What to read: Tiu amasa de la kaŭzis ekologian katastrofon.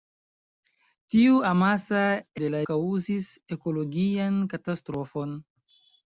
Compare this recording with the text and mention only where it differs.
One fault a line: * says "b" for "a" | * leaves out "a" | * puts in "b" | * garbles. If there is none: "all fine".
all fine